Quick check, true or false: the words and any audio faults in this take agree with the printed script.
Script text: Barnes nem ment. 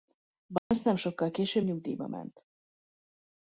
false